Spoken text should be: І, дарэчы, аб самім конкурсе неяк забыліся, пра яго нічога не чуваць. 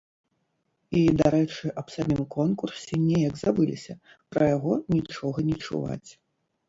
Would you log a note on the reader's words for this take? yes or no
no